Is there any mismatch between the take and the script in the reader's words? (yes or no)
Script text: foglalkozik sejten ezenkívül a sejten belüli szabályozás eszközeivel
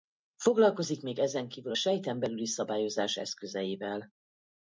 yes